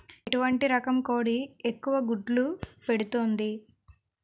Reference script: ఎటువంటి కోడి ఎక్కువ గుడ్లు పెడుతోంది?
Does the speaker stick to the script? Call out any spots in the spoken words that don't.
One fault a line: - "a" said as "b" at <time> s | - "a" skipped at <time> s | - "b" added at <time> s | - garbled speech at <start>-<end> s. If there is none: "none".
- "రకం" added at 0.7 s